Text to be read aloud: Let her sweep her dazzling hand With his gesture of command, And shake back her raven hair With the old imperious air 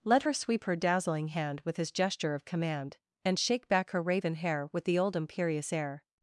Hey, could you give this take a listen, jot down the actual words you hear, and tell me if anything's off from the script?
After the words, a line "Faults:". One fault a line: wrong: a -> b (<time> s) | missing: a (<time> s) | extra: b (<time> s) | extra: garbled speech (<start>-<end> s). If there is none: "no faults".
Let her sweep her dazzling hand With his gesture of command, And shake back her raven hair With the old imperious air
Faults:
no faults